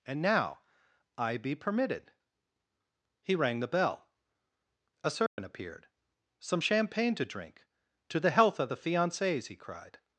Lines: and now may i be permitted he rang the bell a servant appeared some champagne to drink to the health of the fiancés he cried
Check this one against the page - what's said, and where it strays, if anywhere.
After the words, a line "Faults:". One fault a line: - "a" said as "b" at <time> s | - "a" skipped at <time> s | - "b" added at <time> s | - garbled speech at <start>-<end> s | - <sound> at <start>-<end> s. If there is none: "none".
and now i be permitted he rang the bell a servant appeared some champagne to drink to the health of the fiancés he cried
Faults:
- "may" skipped at 0.6 s
- dropout at 5.3-5.4 s